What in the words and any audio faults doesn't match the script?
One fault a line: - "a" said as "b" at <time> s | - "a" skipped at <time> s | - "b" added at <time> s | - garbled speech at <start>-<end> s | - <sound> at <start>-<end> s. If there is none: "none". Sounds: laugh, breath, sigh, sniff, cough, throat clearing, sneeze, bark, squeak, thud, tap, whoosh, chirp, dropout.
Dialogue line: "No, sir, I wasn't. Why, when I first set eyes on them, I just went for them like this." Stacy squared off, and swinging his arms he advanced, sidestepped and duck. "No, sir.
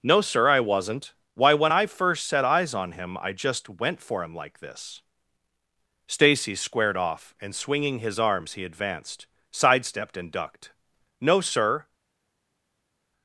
- "them" said as "him" at 2.9 s
- "them" said as "him" at 4.2 s
- "duck" said as "ducked" at 10.3 s